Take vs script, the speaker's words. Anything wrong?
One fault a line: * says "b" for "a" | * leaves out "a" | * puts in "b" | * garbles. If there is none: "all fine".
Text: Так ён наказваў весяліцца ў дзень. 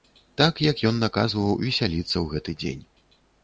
* puts in "як"
* puts in "гэты"